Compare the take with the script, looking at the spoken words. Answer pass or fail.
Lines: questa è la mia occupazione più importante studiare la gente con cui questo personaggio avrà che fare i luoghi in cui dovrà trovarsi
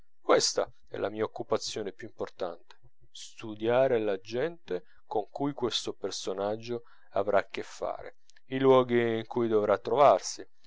pass